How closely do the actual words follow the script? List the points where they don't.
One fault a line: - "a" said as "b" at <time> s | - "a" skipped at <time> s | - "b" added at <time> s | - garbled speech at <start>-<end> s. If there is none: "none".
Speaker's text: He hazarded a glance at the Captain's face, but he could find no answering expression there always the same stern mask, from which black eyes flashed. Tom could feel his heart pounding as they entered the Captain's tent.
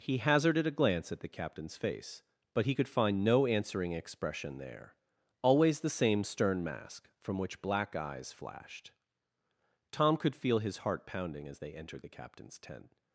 none